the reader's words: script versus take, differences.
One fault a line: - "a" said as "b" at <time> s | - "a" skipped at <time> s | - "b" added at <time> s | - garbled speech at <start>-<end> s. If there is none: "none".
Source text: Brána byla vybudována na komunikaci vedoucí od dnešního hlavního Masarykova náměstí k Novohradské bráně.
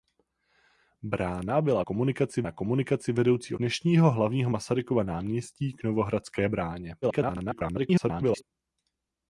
- "vybudována" said as "komunikaci" at 1.8 s
- "od" skipped at 3.5 s
- garbled speech at 7.0-8.4 s